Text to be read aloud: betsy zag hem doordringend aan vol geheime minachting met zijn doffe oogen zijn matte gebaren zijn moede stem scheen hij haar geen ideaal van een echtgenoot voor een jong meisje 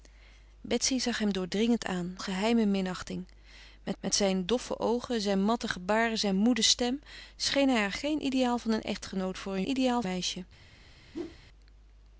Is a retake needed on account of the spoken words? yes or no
yes